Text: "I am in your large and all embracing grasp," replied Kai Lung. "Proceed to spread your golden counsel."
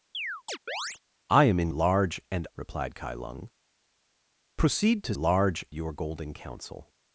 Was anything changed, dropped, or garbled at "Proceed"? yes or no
no